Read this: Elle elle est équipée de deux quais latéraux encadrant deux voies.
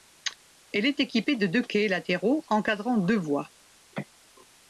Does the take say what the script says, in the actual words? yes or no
no